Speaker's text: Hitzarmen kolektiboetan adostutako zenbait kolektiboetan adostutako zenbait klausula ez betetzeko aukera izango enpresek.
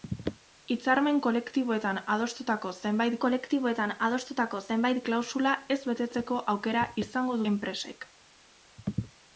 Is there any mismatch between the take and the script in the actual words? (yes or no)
no